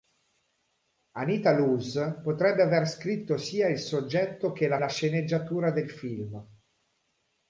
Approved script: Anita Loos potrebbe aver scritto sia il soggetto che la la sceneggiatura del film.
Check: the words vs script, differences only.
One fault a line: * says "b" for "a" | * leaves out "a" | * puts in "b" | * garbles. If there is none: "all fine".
all fine